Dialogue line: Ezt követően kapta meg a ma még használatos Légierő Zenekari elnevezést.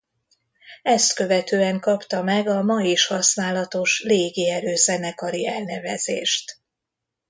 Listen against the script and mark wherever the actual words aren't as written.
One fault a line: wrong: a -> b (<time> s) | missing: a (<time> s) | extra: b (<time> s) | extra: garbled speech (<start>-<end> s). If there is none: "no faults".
wrong: még -> is (2.8 s)